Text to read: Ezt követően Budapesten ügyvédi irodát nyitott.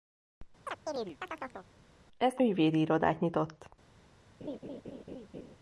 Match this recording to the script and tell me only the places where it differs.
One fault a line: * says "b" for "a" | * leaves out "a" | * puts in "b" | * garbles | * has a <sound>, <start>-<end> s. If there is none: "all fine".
* has a chirp, 0.7-1.7 s
* leaves out "követően Budapesten"
* has a laugh, 4.4-5.6 s